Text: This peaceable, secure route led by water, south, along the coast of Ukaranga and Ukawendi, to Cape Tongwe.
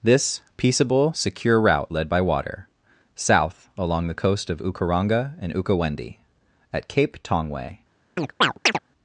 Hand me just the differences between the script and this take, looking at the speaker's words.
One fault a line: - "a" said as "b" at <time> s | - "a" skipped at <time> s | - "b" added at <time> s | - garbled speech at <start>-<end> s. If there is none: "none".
- "to" said as "at" at 6.7 s